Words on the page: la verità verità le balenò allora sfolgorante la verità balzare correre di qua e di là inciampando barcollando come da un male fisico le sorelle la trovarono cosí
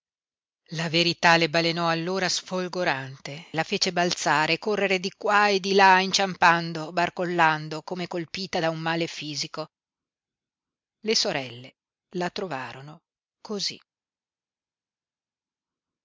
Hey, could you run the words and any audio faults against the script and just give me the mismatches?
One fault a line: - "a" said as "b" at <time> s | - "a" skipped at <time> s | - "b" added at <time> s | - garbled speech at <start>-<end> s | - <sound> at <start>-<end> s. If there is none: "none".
- "verità" skipped at 1.4 s
- "verità" said as "fece" at 3.6 s
- "colpita" added at 8.1 s